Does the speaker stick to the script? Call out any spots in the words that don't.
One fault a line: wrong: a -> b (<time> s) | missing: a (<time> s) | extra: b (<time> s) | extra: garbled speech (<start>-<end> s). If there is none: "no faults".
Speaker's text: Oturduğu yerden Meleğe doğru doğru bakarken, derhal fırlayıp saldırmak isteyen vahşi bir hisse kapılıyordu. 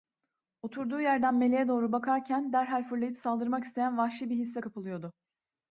missing: doğru (1.9 s)